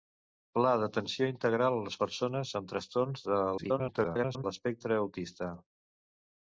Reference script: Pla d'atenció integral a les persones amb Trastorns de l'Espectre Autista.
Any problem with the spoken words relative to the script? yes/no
yes